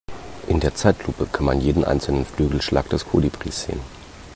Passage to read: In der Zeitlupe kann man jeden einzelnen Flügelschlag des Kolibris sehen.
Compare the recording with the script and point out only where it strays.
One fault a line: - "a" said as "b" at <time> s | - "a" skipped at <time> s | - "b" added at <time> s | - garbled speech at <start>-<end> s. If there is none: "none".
none